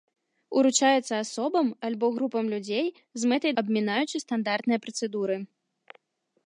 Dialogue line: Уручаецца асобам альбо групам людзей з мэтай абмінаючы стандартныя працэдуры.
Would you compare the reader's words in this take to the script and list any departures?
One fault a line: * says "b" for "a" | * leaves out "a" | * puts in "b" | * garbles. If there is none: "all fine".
all fine